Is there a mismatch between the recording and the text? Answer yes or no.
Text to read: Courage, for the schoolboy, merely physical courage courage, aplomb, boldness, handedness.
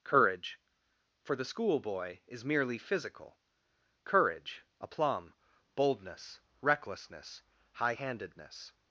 yes